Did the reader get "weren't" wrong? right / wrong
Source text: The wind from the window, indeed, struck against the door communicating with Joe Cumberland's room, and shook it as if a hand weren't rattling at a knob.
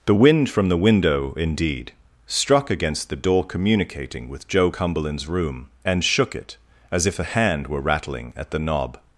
wrong